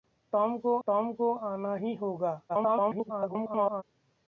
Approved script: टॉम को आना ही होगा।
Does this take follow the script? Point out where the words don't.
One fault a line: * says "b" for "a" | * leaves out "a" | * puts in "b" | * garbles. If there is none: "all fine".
* puts in "टॉम को"
* garbles